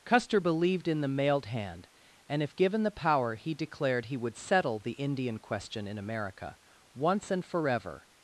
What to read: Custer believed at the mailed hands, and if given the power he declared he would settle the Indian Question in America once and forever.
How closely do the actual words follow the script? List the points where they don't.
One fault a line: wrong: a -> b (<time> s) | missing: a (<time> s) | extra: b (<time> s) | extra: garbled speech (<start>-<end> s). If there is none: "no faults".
wrong: at -> in (0.9 s)
wrong: hands -> hand (1.5 s)